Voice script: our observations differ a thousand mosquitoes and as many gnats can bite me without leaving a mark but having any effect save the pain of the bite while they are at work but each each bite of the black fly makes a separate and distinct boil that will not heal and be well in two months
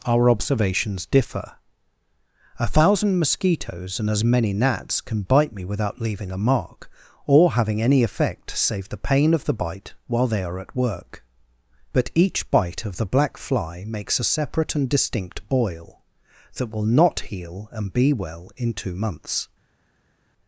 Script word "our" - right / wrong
right